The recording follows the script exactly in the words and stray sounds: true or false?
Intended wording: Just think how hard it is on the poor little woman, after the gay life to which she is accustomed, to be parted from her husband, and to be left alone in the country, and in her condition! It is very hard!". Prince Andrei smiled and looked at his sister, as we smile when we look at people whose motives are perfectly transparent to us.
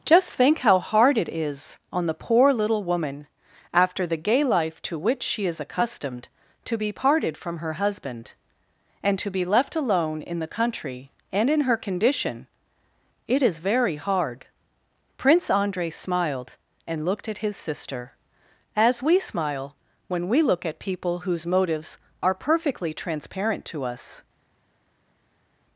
true